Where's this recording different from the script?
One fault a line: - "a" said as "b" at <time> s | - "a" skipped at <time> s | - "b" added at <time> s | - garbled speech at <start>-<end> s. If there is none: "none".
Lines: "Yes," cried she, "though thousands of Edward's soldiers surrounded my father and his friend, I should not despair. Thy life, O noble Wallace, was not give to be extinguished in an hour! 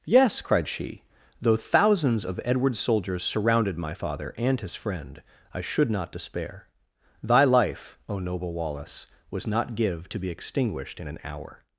none